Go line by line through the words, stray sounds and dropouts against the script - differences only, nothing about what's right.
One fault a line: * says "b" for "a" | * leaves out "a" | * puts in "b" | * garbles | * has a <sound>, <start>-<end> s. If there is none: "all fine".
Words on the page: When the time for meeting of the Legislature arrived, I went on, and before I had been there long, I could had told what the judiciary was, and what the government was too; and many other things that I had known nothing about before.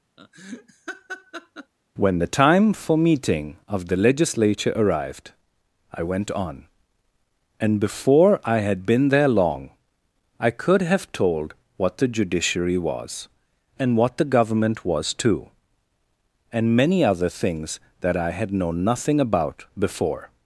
* has a laugh, 0.2-1.7 s
* says "have" for "had"